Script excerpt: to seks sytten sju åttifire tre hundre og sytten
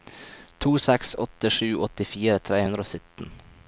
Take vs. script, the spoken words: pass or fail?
fail